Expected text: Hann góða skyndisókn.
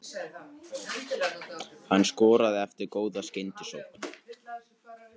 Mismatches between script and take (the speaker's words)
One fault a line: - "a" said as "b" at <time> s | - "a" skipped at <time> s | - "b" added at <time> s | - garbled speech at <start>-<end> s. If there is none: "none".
- "skoraði eftir" added at 2.1 s